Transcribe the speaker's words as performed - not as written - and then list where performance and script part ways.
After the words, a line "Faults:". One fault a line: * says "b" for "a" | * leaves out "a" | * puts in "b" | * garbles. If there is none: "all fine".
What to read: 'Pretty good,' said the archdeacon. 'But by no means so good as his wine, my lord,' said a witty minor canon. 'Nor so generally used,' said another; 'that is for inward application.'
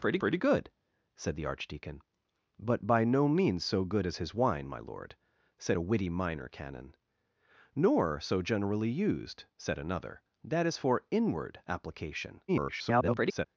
'Pretty pretty good,' said the archdeacon. 'But by no means so good as his wine, my lord,' said a witty minor canon. 'Nor so generally used,' said another; 'that is for inward application.' [garbled]
Faults:
* puts in "pretty"
* garbles